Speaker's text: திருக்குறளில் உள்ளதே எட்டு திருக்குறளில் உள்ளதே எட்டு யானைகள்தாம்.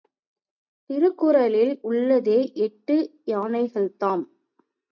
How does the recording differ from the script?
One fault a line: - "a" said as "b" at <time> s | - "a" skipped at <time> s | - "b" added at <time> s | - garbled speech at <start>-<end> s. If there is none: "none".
- "திருக்குறளில் உள்ளதே எட்டு" skipped at 3.0 s